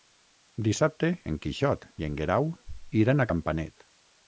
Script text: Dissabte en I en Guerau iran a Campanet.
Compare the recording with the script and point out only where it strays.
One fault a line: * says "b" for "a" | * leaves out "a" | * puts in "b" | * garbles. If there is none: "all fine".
* puts in "Quixot"